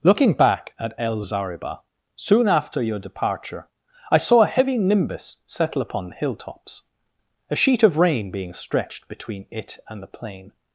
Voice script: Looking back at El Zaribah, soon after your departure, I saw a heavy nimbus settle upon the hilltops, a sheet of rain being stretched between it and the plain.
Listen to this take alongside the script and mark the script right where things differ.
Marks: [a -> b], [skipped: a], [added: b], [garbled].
Looking back at El Zaribah, soon after your departure, I saw a heavy nimbus settle upon the hilltops, a sheet of rain being stretched between it and the plain.